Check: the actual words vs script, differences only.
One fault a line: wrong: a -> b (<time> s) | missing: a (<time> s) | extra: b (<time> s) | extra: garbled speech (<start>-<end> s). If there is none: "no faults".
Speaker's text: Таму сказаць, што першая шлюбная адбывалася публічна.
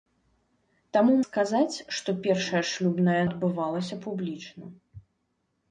no faults